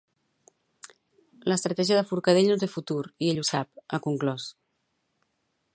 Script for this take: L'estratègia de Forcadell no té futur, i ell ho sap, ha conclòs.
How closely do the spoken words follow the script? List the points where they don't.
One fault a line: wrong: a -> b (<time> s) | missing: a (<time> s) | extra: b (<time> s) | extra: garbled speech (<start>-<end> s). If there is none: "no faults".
no faults